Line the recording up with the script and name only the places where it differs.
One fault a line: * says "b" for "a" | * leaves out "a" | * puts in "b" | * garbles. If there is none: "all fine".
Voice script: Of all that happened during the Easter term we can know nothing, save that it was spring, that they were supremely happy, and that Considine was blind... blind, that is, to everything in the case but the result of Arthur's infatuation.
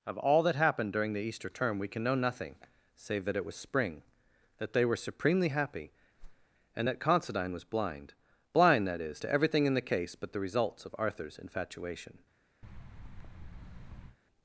* says "results" for "result"